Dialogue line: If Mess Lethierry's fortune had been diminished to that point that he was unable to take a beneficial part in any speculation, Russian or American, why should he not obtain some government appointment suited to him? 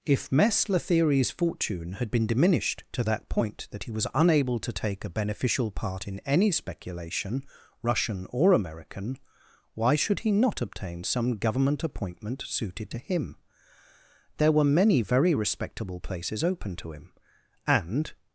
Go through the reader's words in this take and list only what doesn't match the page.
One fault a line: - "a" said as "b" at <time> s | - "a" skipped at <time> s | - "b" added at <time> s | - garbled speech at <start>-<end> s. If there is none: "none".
- "There were many very respectable places open to him and" added at 14.4 s